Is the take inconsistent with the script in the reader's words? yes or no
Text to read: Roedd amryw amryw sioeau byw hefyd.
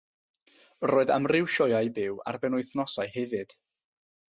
yes